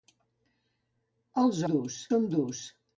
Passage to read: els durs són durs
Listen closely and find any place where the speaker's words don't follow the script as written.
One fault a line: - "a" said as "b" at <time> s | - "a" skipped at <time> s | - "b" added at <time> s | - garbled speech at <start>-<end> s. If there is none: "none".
none